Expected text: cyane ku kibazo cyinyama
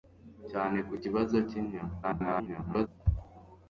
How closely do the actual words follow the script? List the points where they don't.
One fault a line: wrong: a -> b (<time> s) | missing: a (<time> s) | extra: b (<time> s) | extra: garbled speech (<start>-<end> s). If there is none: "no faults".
extra: garbled speech (2.0-2.9 s)